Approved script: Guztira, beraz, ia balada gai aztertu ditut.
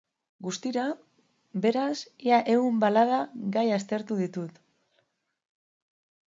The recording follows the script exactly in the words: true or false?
false